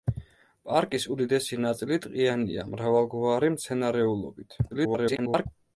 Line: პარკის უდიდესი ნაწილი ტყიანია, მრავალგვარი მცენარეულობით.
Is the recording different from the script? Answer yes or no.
yes